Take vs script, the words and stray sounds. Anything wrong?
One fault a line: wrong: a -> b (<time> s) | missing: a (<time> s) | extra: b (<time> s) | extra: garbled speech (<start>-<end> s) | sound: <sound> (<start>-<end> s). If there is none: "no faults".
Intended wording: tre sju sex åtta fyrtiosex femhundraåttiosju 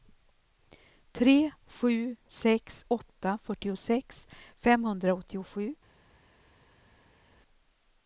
no faults